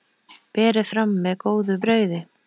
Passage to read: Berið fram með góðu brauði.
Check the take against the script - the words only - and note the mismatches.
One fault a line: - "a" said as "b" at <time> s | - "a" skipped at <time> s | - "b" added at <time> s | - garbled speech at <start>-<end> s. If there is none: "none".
none